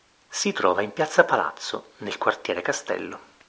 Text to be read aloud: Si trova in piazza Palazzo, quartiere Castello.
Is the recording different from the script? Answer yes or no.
yes